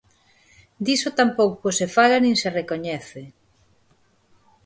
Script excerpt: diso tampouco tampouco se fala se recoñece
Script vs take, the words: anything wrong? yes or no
yes